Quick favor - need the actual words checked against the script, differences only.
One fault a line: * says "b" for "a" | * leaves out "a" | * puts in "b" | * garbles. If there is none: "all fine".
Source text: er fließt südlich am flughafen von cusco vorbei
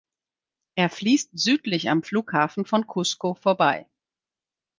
all fine